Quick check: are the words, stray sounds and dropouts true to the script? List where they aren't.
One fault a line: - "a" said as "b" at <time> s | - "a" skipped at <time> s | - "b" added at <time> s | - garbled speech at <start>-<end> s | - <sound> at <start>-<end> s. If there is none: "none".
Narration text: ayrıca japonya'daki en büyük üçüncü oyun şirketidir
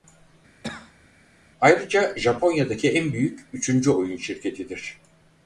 - cough at 0.6-1.1 s